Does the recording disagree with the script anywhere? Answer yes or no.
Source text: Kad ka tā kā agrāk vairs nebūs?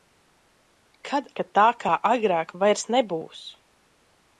no